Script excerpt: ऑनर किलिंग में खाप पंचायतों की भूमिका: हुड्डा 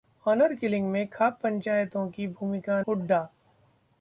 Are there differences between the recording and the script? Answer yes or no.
no